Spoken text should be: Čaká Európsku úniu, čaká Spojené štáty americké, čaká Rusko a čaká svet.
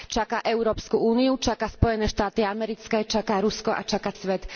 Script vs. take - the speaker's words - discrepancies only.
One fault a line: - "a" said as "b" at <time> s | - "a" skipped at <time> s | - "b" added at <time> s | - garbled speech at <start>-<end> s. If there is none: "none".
none